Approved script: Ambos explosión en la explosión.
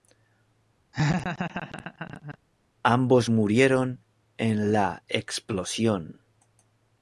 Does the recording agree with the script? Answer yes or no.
no